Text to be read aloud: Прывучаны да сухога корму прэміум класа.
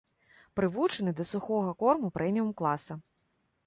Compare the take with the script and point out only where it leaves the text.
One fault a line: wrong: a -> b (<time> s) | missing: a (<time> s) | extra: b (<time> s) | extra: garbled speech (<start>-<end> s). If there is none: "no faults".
no faults